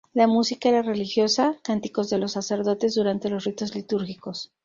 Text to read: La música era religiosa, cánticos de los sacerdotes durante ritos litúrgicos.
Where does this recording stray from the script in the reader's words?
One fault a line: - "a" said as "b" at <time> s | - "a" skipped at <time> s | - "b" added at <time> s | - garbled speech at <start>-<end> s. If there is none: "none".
- "los" added at 3.3 s